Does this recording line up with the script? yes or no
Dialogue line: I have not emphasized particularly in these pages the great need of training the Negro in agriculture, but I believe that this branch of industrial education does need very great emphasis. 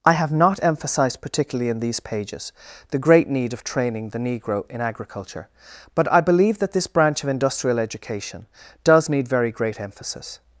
yes